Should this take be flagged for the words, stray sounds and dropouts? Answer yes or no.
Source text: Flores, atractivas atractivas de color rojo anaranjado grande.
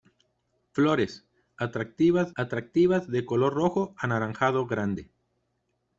no